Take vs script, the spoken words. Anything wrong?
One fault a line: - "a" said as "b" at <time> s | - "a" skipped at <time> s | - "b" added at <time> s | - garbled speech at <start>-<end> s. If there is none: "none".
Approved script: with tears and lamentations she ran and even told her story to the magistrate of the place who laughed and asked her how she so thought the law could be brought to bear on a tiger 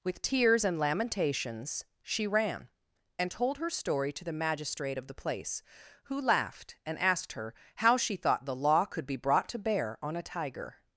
- "even" skipped at 3.3 s
- "so" skipped at 8.1 s